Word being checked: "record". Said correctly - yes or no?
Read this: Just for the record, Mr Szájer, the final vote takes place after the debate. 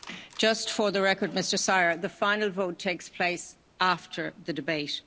yes